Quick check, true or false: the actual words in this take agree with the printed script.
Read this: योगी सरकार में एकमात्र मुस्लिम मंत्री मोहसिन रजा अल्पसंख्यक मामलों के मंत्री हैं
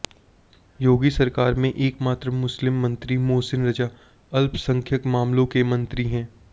true